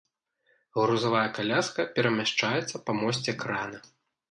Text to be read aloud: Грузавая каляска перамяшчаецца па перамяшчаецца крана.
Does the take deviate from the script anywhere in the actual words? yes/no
yes